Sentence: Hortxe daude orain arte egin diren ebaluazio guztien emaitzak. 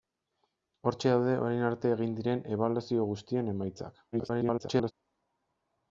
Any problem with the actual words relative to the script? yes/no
yes